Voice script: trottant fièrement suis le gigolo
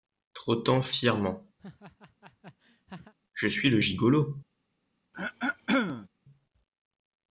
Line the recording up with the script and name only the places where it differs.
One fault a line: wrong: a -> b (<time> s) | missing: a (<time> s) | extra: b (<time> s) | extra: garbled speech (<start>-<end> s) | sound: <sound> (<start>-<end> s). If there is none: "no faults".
sound: laugh (1.6-3.1 s)
extra: je (3.3 s)
sound: throat clearing (5.1-6.1 s)